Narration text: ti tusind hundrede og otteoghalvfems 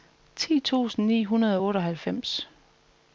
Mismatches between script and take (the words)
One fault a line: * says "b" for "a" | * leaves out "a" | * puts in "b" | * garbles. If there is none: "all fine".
* puts in "ni"